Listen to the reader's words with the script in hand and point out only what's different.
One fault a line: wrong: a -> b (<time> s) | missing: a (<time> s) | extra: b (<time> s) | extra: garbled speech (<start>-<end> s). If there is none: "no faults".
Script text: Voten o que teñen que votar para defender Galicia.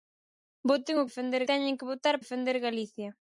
wrong: que -> defender (1.1 s)
missing: para (2.1 s)